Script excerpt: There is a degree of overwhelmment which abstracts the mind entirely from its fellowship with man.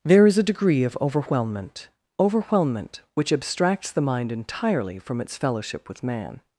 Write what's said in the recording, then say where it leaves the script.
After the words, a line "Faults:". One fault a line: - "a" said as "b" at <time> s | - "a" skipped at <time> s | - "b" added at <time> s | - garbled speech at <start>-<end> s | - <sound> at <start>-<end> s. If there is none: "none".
There is a degree of overwhelmment overwhelmment which abstracts the mind entirely from its fellowship with man.
Faults:
- "overwhelmment" added at 2.2 s